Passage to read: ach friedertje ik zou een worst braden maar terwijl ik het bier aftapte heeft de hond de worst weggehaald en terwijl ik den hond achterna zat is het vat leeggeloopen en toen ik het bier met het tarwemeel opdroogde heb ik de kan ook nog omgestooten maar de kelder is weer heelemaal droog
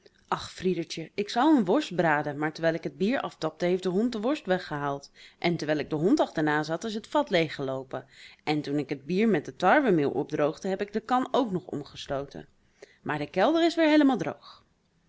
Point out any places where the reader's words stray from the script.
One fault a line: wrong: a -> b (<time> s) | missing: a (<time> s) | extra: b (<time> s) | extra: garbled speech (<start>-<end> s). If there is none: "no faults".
no faults